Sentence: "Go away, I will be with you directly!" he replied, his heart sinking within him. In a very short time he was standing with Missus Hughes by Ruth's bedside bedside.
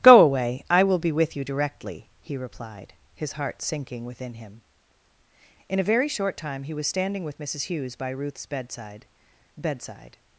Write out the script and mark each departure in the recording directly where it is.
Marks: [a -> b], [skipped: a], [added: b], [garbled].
"Go away, I will be with you directly!" he replied, his heart sinking within him. In a very short time he was standing with Missus Hughes by Ruth's bedside bedside.